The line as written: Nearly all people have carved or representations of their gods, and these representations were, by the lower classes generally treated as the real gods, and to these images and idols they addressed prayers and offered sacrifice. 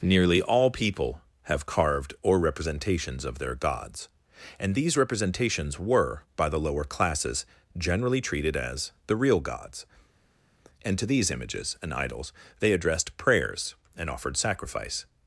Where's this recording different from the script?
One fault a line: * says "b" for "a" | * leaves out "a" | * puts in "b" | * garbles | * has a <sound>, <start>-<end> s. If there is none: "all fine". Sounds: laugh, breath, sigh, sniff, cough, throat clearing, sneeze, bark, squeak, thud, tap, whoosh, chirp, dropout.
all fine